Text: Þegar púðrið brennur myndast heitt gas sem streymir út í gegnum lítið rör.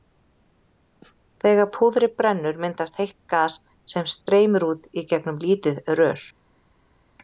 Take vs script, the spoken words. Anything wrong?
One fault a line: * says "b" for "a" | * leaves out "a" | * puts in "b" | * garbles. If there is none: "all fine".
all fine